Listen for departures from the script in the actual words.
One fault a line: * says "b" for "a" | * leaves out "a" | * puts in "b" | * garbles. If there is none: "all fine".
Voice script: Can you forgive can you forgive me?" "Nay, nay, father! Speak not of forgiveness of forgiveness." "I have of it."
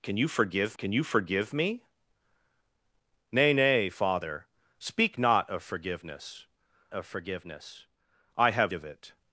all fine